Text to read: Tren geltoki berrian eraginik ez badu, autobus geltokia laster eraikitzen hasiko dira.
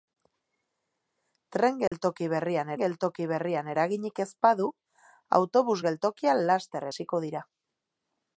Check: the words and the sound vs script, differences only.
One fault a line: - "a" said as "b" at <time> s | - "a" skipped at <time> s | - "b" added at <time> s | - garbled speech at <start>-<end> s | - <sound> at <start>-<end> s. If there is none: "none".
- dropout at 1.9-1.9 s
- "geltoki berrian" added at 2.8 s
- "eraikitzen" skipped at 6.9 s